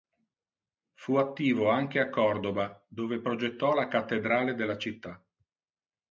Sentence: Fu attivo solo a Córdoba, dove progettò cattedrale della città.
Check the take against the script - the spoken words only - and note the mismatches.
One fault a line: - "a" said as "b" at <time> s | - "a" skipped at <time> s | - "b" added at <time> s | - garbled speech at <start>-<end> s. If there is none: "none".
- "solo" said as "anche" at 1.7 s
- "la" added at 3.8 s